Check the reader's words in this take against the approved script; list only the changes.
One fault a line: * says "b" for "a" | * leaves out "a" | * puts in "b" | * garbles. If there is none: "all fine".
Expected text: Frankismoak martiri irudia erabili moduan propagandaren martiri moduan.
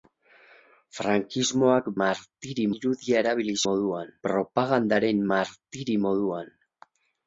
all fine